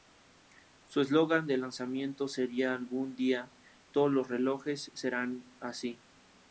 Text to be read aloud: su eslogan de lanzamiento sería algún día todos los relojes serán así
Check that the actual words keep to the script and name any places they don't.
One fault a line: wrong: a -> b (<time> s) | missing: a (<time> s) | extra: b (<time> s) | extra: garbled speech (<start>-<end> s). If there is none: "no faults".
no faults